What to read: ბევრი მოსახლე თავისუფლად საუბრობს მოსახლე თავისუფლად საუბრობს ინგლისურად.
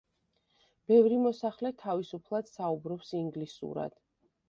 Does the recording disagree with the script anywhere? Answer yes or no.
yes